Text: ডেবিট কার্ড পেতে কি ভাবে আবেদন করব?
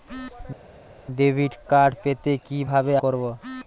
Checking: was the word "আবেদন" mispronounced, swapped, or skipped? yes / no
yes